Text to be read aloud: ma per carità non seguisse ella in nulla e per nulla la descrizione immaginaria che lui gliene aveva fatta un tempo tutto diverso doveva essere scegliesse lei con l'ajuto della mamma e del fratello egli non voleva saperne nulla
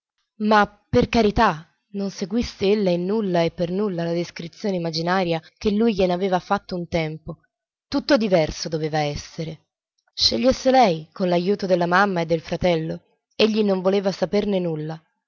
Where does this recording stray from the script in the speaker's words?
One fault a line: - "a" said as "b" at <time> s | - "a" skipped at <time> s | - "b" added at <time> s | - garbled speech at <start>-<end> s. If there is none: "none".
none